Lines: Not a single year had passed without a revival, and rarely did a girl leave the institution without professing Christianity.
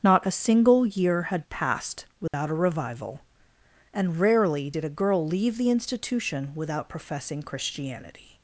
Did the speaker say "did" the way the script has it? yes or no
yes